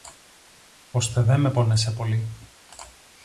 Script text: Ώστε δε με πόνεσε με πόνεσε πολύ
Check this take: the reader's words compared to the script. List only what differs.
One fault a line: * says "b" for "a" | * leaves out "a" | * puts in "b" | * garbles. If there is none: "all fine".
* leaves out "με πόνεσε"